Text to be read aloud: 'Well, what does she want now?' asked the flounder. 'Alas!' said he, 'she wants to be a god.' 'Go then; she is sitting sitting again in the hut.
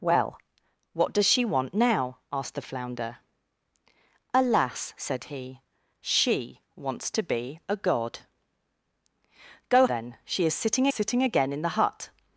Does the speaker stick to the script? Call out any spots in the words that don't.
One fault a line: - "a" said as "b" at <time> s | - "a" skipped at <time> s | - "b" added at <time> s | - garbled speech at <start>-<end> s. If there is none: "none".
none